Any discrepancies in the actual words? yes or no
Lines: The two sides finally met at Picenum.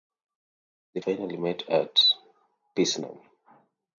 yes